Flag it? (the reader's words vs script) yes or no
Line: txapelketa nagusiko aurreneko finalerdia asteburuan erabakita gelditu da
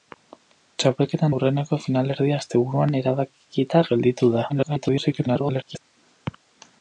yes